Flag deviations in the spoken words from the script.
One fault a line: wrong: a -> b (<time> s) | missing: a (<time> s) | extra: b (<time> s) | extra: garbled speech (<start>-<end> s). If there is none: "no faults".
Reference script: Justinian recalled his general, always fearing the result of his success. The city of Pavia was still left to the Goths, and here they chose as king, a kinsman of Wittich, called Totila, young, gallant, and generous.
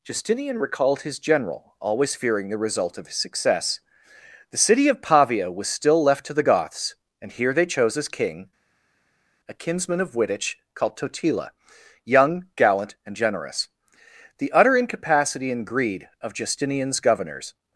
extra: The utter incapacity and greed of Justinian's governors (14.4 s)